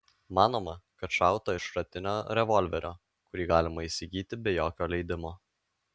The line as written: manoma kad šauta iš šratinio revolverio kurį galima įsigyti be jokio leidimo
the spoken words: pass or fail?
pass